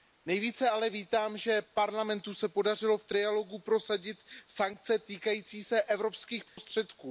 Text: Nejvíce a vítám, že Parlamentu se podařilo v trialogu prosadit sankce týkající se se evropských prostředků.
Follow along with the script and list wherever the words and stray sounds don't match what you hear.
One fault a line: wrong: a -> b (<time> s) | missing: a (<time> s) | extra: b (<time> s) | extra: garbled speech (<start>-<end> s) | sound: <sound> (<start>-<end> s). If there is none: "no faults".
wrong: a -> ale (0.7 s)
missing: se (5.8 s)
sound: dropout (6.5-6.6 s)